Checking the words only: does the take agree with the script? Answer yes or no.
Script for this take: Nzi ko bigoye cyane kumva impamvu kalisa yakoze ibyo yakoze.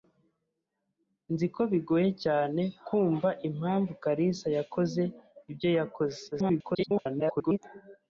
no